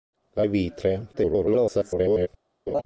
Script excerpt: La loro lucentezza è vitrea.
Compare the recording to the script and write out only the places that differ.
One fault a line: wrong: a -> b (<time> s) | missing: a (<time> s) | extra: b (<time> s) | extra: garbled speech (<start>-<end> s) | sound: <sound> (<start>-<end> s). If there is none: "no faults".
missing: loro lucentezza (0.4 s)
extra: garbled speech (1.1-2.3 s)
sound: laugh (2.7-2.8 s)